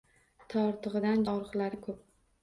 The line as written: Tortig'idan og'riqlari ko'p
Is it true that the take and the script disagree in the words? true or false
false